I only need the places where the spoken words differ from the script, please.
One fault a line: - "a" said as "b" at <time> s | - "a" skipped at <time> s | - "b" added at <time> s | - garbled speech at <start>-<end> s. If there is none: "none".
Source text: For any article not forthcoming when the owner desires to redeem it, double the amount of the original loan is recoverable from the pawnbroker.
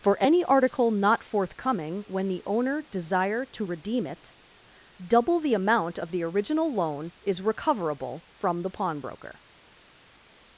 - "desires" said as "desire" at 2.9 s